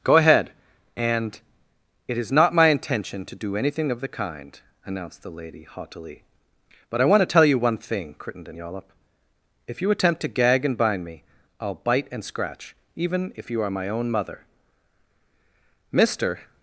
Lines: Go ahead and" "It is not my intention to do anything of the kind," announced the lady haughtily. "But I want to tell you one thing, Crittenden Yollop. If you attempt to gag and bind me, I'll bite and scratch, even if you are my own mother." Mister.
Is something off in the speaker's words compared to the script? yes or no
no